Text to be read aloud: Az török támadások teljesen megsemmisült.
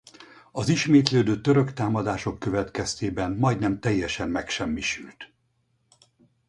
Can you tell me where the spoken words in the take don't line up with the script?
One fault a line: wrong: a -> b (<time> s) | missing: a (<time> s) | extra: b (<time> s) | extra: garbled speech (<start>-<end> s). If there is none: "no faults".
extra: ismétlődő (0.7 s)
extra: következtében majdnem (2.4 s)